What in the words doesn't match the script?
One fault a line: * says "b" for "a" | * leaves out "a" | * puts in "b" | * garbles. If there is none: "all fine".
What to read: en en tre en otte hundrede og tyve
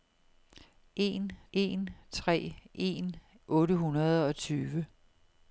all fine